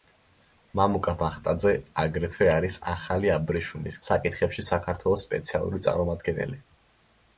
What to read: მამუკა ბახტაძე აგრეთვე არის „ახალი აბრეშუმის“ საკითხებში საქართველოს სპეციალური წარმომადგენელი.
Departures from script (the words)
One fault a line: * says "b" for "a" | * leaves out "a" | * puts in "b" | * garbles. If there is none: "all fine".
all fine